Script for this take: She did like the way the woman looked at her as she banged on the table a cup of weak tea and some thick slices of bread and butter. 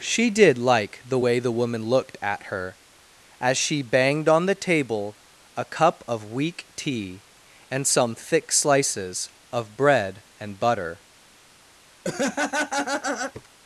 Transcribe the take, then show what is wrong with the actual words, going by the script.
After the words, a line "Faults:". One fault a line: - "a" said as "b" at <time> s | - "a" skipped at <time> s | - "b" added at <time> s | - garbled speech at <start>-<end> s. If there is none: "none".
She did like the way the woman looked at her as she banged on the table a cup of weak tea and some thick slices of bread and butter.
Faults:
none